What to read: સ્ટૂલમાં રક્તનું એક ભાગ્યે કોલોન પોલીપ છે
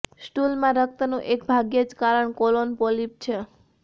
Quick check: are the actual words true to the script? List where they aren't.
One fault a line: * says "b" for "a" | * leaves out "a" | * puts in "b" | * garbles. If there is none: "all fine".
* puts in "જ કારણ"